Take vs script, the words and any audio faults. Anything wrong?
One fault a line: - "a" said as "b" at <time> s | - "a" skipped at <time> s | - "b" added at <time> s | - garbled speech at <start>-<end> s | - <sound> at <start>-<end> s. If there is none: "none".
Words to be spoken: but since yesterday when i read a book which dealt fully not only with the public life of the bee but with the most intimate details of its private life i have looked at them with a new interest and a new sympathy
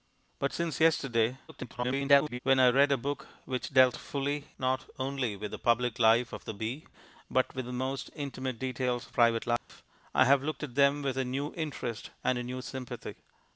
- garbled speech at 1.5-2.4 s
- "its" skipped at 9.2 s
- dropout at 9.6-9.7 s